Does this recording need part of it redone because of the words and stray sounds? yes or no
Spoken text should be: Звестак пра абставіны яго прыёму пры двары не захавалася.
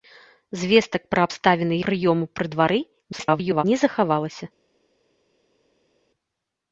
yes